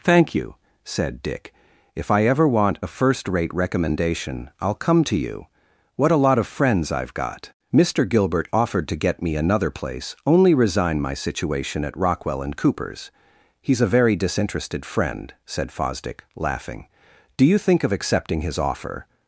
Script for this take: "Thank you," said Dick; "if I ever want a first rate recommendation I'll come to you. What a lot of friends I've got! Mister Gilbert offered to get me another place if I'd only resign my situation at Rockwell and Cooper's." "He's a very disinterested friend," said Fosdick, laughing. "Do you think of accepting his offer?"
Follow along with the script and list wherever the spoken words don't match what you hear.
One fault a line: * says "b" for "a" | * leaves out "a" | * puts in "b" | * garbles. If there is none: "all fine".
* leaves out "if I'd"